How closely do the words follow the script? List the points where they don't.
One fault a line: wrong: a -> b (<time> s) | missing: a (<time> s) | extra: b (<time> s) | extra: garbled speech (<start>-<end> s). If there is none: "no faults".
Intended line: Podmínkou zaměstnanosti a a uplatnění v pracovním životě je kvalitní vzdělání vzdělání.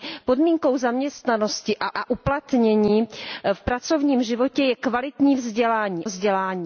no faults